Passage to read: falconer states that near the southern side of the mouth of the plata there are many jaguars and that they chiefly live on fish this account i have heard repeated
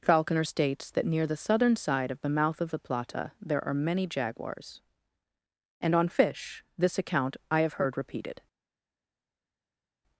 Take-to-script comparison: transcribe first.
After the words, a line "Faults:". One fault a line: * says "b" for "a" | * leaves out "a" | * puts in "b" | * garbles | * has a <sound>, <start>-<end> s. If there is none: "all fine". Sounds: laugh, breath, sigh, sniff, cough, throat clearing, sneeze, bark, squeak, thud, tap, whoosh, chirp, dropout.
falconer states that near the southern side of the mouth of the plata there are many jaguars and on fish this account i have heard repeated
Faults:
* leaves out "that they chiefly live"